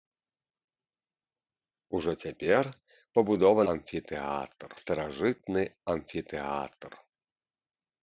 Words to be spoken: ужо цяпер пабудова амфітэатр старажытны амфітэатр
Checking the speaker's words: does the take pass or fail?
pass